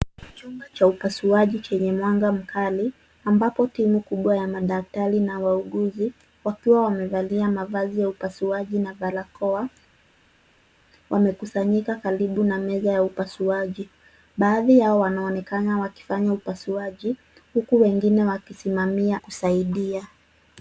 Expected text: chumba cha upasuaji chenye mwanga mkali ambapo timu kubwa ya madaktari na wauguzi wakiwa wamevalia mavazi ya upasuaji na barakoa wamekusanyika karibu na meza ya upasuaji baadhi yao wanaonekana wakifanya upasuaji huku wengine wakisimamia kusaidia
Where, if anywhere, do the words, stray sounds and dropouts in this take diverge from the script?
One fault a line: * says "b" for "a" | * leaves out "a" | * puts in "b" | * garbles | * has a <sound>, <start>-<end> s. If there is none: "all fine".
all fine